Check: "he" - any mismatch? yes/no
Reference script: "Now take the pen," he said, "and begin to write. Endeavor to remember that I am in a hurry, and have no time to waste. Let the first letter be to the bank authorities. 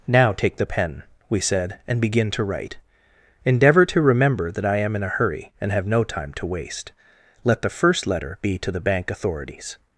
yes